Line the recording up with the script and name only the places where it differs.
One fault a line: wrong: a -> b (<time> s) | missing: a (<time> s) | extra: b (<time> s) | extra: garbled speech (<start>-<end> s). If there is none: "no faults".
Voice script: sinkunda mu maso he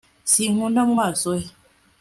no faults